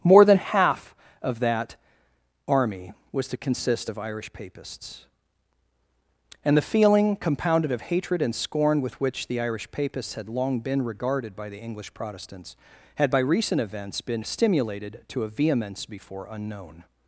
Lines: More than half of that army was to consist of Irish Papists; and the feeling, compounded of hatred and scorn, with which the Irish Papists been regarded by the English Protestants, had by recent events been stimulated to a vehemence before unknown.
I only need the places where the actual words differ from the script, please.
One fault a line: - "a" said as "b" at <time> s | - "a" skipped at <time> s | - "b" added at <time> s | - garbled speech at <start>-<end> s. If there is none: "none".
- "had long" added at 10.1 s